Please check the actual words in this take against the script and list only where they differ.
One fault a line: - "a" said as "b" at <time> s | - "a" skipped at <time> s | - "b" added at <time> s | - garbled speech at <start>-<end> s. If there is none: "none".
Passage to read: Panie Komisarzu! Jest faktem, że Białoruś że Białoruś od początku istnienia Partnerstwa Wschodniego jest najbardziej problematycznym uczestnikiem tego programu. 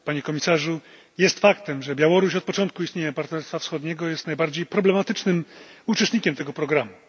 - "że Białoruś" skipped at 2.4 s